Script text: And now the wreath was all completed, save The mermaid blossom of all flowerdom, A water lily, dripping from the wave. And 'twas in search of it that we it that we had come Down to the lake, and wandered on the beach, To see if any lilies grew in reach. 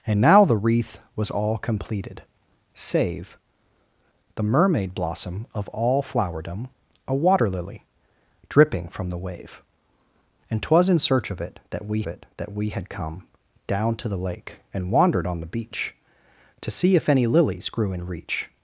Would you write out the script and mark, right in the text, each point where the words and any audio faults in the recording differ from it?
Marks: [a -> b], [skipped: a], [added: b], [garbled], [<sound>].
And now the wreath was all completed, save The mermaid blossom of all flowerdom, A water lily, dripping from the wave. And 'twas in search of it that we it that we had come Down to the lake, and wandered on the beach, To see if any lilies grew in reach.